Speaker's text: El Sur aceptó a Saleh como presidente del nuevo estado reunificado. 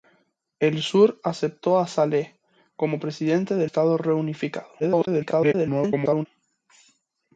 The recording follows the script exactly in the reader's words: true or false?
false